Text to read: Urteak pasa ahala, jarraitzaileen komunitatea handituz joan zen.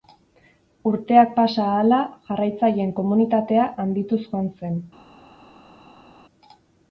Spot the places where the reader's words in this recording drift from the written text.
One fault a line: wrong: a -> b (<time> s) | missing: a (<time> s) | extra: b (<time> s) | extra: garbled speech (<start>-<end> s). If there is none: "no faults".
no faults